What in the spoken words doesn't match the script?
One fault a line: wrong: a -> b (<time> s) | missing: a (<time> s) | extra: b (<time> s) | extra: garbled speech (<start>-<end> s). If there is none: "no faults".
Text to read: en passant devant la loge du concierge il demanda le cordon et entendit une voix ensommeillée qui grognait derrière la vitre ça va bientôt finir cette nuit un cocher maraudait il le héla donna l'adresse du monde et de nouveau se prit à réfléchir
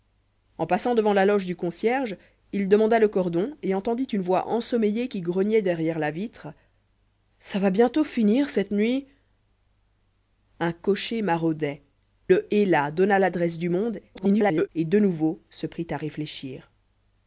missing: il (11.8 s)
extra: garbled speech (14.1-14.7 s)